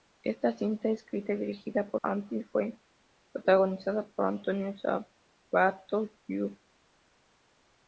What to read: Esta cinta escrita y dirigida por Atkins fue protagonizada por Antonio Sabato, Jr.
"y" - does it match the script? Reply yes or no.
yes